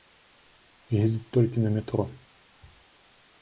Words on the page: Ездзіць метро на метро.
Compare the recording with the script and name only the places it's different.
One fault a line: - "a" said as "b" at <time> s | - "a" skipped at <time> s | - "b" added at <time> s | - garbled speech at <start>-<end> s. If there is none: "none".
- "метро" said as "толькі" at 1.4 s